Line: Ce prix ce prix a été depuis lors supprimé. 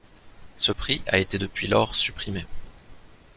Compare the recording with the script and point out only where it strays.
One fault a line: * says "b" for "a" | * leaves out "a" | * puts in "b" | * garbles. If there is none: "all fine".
* leaves out "ce prix"